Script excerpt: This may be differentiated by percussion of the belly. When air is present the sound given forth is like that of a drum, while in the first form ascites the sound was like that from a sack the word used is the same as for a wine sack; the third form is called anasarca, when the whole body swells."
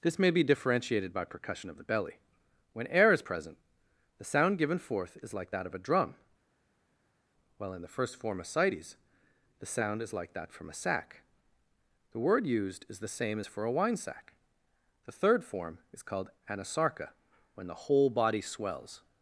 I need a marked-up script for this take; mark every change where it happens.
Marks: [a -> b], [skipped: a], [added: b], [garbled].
This may be differentiated by percussion of the belly. When air is present the sound given forth is like that of a drum, while in the first form ascites the sound [was -> is] like that from a sack the word used is the same as for a wine sack; the third form is called anasarca, when the whole body swells."